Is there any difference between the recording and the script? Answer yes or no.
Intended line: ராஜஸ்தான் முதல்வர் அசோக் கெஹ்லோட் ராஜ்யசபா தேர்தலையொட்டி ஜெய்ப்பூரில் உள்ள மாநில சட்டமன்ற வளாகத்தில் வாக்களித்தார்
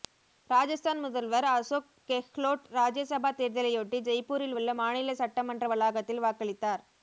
no